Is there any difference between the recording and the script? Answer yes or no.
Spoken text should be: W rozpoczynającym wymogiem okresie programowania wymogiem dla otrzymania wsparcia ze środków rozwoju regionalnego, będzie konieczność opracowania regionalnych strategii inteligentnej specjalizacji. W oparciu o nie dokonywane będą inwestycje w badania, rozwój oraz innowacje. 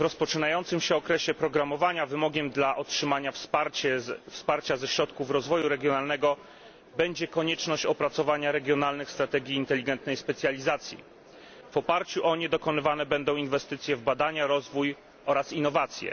yes